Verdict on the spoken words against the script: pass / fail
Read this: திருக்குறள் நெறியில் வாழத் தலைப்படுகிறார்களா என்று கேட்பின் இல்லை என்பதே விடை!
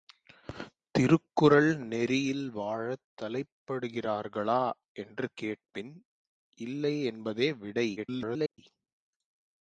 fail